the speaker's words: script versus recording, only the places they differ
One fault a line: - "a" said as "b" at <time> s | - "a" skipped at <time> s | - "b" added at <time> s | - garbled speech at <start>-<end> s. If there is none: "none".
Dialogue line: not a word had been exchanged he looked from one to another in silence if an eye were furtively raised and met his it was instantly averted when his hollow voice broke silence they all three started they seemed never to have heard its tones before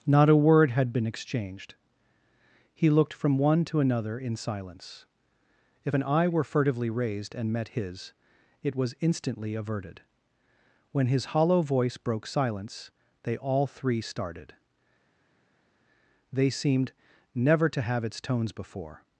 - "heard" skipped at 18.0 s